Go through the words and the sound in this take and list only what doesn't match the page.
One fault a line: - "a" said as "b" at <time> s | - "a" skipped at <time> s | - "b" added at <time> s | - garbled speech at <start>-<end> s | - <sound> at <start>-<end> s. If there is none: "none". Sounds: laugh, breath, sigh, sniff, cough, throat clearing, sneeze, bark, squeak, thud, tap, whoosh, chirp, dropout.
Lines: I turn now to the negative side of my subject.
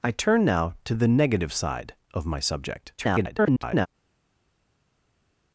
- garbled speech at 3.0-3.9 s